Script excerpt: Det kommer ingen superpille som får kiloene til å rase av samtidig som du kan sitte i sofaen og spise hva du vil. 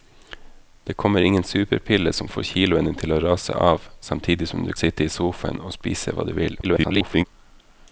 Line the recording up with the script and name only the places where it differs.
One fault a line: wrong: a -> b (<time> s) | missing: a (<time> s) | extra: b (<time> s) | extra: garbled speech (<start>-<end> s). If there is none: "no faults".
missing: kan (4.7 s)
extra: garbled speech (6.6-7.2 s)